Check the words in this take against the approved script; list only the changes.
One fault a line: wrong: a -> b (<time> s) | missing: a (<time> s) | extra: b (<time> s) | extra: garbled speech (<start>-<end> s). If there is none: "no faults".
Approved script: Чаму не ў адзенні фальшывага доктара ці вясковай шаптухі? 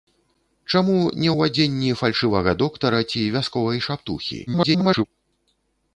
extra: garbled speech (4.5-5.0 s)